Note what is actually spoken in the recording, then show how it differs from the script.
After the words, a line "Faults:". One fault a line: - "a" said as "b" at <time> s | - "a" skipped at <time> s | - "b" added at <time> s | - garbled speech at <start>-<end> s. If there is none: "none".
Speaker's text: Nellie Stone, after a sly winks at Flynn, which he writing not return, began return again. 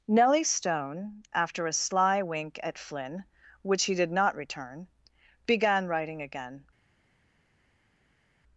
Nellie Stone, after a sly wink at Flynn, which he did not return, began writing again.
Faults:
- "winks" said as "wink" at 2.2 s
- "writing" said as "did" at 3.9 s
- "return" said as "writing" at 5.9 s